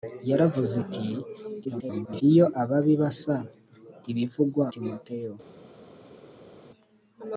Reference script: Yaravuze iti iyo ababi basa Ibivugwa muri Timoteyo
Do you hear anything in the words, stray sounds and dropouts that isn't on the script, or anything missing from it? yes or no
yes